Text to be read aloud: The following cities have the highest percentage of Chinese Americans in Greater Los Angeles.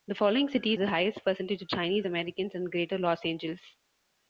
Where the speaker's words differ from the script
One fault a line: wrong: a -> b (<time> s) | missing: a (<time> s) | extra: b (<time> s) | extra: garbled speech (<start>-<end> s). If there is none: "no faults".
missing: have (0.8 s)